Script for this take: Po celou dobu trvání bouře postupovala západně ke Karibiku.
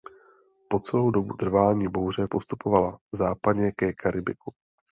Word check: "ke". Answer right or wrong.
right